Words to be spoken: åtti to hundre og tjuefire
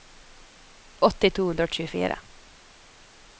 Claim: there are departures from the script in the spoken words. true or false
false